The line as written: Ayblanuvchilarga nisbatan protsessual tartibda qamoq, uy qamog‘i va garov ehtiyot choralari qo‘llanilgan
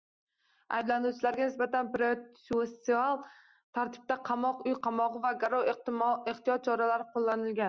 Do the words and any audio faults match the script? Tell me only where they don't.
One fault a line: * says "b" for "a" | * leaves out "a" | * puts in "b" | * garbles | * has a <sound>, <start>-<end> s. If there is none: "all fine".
all fine